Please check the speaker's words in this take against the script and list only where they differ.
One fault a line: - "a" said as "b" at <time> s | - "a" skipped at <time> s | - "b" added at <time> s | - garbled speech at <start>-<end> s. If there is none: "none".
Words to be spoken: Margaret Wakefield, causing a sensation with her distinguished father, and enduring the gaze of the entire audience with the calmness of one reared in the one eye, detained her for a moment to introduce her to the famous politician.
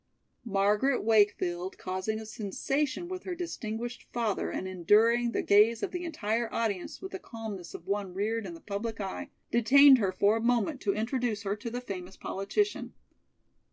- "one" said as "public" at 8.6 s